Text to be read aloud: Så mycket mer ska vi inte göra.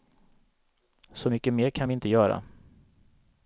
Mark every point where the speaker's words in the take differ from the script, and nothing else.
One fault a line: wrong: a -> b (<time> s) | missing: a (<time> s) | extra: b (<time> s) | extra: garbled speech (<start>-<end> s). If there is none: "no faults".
wrong: ska -> kan (1.7 s)